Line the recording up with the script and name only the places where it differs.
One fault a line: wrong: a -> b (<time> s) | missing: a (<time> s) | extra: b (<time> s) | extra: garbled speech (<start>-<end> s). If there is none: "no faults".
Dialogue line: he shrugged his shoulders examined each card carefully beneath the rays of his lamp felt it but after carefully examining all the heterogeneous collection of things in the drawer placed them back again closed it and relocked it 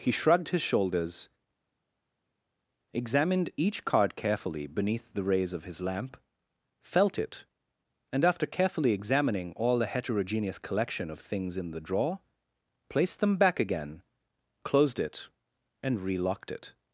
wrong: but -> and (8.1 s)